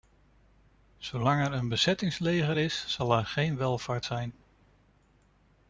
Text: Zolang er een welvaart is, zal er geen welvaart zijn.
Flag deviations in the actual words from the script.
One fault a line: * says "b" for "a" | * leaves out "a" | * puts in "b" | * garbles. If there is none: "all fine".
* says "bezettingsleger" for "welvaart"